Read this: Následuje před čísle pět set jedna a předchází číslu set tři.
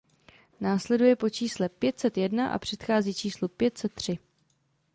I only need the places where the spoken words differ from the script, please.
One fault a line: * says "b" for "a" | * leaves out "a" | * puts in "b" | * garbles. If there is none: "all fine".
* says "po" for "před"
* puts in "pět"